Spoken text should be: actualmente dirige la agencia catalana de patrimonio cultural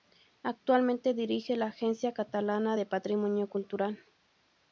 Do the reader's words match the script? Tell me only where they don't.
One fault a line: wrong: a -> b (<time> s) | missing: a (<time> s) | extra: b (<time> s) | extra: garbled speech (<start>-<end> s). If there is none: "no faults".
no faults